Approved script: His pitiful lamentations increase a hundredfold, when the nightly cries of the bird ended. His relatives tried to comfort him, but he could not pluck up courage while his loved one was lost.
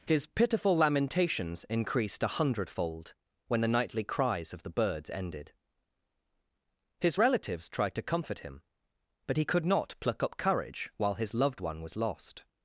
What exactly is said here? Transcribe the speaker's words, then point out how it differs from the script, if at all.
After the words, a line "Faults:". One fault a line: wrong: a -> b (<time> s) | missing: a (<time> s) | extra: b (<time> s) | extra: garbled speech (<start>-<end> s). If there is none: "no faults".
His pitiful lamentations increased a hundredfold, when the nightly cries of the birds ended. His relatives tried to comfort him, but he could not pluck up courage while his loved one was lost.
Faults:
wrong: increase -> increased (1.6 s)
wrong: bird -> birds (4.7 s)